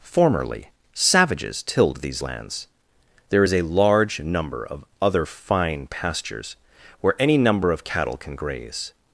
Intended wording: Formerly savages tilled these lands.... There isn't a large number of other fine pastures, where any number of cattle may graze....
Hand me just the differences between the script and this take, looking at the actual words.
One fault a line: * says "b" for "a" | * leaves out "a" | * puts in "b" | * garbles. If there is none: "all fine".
* says "is" for "isn't"
* says "can" for "may"